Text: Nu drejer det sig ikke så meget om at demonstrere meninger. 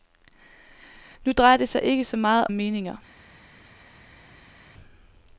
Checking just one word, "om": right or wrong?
wrong